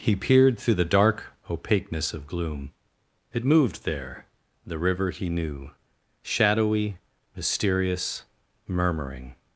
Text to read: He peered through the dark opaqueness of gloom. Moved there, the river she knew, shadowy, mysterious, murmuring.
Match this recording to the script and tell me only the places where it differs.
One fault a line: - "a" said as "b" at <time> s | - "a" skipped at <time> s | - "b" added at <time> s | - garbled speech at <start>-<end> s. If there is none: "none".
- "It" added at 3.3 s
- "she" said as "he" at 5.1 s